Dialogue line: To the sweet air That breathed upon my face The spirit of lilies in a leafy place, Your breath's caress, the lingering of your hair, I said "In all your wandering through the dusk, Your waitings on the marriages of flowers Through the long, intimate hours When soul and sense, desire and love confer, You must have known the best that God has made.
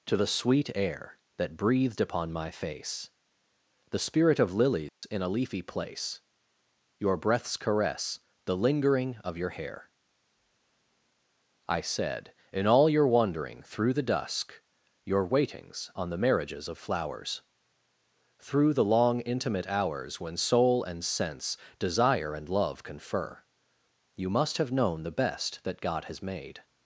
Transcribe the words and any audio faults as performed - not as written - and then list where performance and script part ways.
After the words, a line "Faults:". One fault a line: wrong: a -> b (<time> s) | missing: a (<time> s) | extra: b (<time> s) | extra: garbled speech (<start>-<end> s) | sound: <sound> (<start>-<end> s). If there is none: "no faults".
To the sweet air That breathed upon my face The spirit of lilies in a leafy place, Your breath's caress, the lingering of your hair, I said "In all your wandering through the dusk, Your waitings on the marriages of flowers Through the long, intimate hours When soul and sense, desire and love confer, You must have known the best that God has made.
Faults:
sound: dropout (4.9-5.0 s)